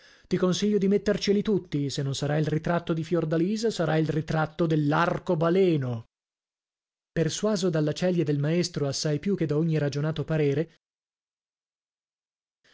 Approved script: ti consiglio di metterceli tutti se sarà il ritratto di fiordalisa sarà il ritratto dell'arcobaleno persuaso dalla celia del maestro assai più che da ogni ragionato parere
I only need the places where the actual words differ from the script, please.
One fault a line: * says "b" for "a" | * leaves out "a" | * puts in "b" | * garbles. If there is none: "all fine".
* puts in "non"